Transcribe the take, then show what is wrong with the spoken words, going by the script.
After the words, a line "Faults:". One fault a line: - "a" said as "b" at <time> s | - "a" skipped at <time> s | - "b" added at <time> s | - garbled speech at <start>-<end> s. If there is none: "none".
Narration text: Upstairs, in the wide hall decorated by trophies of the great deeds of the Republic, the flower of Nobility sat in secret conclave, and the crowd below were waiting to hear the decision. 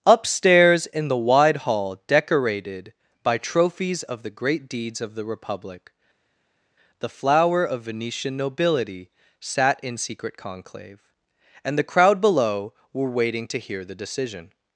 Upstairs, in the wide hall decorated by trophies of the great deeds of the Republic, the flower of Venetian nobility sat in secret conclave, and the crowd below were waiting to hear the decision.
Faults:
- "Venetian" added at 7.8 s